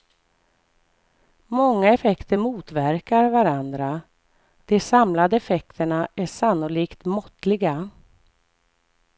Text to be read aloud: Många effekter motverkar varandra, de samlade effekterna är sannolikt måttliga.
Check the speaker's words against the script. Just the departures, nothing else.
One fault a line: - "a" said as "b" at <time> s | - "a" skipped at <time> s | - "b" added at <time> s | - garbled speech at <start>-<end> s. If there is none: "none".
none